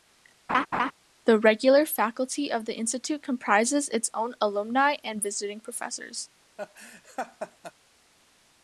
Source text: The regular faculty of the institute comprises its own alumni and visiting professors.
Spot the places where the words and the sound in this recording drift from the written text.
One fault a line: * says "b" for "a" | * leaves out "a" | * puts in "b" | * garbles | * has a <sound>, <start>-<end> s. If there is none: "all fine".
* has a laugh, 0.5-0.9 s
* has a laugh, 6.6-7.7 s